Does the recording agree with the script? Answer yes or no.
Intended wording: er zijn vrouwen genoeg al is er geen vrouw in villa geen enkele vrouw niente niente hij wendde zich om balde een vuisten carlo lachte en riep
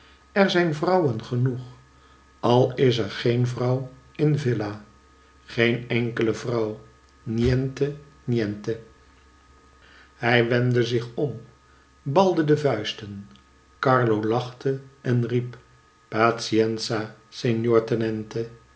no